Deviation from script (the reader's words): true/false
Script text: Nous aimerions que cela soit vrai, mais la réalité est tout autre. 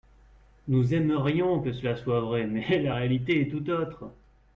false